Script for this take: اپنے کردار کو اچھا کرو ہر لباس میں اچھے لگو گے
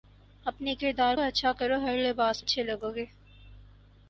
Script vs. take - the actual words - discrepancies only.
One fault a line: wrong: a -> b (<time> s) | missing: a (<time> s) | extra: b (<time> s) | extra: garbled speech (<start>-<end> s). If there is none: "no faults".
missing: کو (1.1 s)
missing: میں (2.4 s)